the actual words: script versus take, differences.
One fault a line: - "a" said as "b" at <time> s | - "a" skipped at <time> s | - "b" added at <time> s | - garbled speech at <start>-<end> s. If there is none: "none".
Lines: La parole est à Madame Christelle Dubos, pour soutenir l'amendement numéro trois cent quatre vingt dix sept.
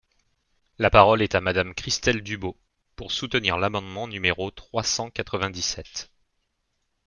none